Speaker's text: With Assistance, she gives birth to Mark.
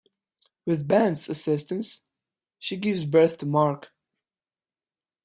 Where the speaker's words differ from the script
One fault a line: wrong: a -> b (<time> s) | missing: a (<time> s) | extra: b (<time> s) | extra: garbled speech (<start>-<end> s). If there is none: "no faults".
extra: Ben's (0.9 s)